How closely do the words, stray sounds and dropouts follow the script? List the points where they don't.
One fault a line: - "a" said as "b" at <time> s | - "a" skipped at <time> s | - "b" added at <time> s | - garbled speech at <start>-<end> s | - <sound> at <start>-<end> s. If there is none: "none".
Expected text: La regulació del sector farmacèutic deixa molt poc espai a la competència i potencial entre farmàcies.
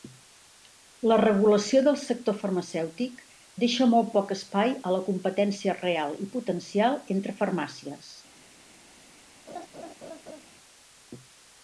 - "real" added at 5.8 s
- laugh at 9.5-10.4 s